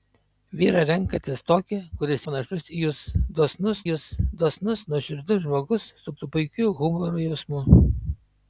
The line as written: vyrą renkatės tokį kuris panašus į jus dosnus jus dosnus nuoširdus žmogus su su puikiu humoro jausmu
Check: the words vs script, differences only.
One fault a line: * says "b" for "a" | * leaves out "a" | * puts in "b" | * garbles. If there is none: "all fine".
all fine